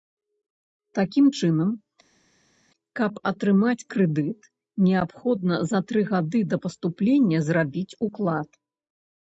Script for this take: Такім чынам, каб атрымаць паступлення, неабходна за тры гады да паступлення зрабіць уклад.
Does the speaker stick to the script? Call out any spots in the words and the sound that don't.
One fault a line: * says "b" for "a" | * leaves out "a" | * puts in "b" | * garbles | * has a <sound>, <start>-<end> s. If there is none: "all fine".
* says "крэдыт" for "паступлення"